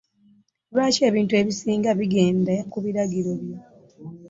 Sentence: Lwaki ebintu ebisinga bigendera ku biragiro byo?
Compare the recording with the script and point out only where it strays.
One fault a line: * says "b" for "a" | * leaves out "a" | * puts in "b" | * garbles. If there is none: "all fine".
* leaves out "bigendera"